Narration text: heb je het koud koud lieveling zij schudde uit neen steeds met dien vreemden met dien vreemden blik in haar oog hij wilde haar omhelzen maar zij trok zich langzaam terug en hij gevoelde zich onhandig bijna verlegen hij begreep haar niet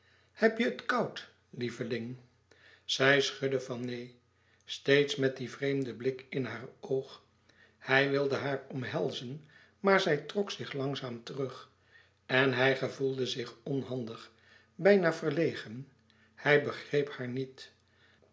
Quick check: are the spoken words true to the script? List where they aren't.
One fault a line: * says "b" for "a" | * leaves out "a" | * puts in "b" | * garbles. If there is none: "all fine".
* leaves out "koud"
* says "van" for "uit"
* leaves out "met dien vreemden"